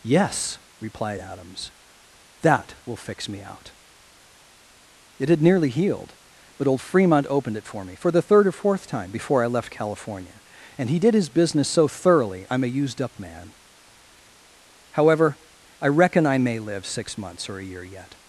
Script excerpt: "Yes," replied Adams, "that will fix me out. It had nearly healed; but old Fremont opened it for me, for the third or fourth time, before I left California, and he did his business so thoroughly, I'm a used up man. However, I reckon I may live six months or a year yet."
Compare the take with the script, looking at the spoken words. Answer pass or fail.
pass